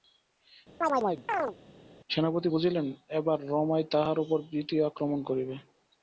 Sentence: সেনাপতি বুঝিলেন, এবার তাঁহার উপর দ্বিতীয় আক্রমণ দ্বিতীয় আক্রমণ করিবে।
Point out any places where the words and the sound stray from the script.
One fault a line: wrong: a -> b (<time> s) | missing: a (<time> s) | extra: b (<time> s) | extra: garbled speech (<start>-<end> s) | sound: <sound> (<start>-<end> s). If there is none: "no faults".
sound: chirp (0.8-1.6 s)
extra: রমাই (3.5 s)
missing: দ্বিতীয় আক্রমণ (5.2 s)